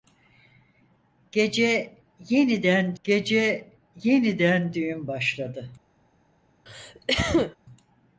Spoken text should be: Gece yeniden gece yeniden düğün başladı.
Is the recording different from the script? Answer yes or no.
no